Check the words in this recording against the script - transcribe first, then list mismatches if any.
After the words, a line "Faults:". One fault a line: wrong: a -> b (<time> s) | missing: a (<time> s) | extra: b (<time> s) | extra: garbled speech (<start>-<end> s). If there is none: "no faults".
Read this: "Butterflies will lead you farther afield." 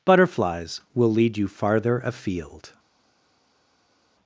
"Butterflies will lead you farther afield."
Faults:
no faults